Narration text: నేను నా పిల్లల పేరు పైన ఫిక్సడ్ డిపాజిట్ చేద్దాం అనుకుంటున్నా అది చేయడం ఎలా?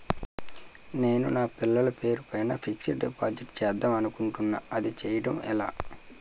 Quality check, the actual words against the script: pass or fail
pass